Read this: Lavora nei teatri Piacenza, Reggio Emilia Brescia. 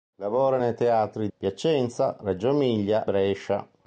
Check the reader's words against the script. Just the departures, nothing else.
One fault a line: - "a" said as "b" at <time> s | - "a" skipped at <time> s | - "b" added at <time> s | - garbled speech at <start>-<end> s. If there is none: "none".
none